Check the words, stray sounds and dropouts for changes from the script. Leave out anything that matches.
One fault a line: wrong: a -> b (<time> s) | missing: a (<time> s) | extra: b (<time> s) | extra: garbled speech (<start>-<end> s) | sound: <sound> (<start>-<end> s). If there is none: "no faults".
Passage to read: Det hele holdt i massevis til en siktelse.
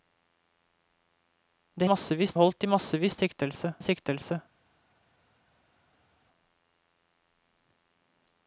wrong: hele -> massevis (1.9 s)
wrong: til -> siktelse (3.2 s)